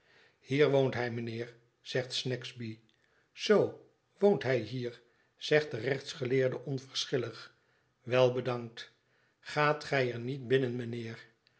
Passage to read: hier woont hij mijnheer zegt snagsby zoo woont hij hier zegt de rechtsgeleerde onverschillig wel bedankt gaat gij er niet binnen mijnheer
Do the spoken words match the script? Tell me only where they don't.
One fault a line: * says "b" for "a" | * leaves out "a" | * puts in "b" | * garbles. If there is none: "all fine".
all fine